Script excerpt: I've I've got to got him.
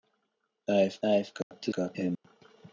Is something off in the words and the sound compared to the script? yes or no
yes